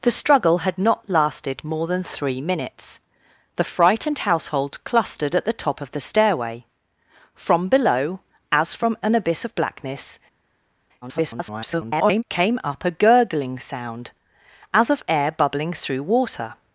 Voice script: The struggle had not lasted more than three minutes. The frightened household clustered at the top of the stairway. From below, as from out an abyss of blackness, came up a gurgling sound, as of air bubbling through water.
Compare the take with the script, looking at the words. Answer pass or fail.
fail